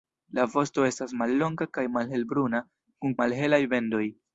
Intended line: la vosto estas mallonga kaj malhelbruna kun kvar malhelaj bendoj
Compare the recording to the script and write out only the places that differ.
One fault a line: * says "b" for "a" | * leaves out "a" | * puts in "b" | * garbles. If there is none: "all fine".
* leaves out "kvar"